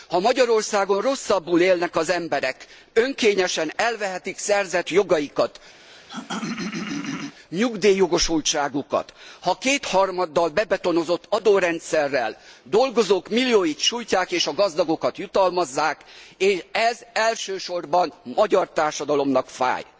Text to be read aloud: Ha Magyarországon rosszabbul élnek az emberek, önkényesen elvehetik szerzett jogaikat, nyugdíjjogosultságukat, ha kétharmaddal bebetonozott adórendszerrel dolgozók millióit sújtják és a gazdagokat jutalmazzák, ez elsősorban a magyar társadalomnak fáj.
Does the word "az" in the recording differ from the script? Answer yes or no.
no